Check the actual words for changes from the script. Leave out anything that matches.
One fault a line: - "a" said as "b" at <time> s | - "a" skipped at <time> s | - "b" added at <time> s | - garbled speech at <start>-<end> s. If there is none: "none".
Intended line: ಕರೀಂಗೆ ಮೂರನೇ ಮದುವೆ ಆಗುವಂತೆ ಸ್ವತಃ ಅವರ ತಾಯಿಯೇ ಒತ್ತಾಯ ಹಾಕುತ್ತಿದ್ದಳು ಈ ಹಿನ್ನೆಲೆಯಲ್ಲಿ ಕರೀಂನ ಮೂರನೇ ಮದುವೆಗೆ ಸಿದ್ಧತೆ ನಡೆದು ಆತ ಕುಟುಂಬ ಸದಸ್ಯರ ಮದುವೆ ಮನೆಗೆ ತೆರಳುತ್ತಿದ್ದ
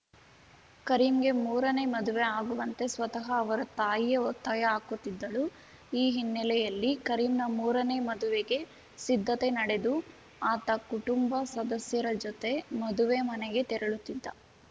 - "ಜೊತೆ" added at 12.2 s